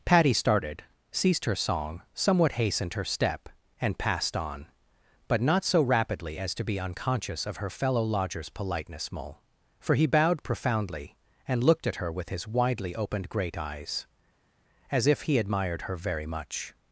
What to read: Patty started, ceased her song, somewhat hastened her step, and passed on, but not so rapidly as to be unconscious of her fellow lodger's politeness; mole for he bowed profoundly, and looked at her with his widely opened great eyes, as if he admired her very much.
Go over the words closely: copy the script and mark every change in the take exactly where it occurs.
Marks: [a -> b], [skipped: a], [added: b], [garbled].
Patty started, ceased her song, somewhat hastened her step, and passed on, but not so rapidly as to be unconscious of her fellow lodger's politeness; mole for he bowed profoundly, and looked at her with his widely opened great eyes, as if he admired her very much.